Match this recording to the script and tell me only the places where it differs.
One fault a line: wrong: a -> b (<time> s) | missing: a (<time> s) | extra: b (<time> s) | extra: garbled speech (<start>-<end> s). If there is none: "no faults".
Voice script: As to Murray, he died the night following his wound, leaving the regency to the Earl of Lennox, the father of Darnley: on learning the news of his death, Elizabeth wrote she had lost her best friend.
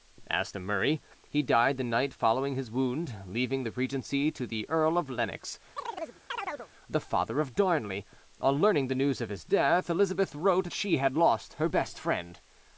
no faults